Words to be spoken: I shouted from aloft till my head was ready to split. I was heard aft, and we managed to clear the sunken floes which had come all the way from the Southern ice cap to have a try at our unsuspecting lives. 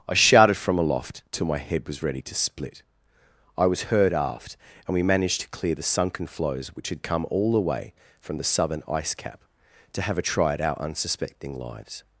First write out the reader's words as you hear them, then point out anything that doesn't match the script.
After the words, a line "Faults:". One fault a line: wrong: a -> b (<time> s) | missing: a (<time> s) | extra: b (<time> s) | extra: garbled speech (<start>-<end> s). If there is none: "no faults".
I shouted from aloft till my head was ready to split. I was heard aft, and we managed to clear the sunken floes which had come all the way from the Southern ice cap to have a try at our unsuspecting lives.
Faults:
no faults